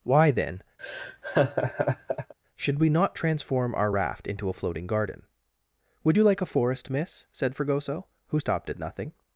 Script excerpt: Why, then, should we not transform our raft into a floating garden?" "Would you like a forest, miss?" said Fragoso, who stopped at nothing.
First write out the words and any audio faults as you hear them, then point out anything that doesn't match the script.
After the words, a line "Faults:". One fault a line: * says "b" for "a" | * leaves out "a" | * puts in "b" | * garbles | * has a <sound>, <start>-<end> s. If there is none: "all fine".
Why, then, should we not transform our raft into a floating garden?" "Would you like a forest, miss?" said Fragoso, who stopped at nothing.
Faults:
* has a laugh, 0.8-2.3 s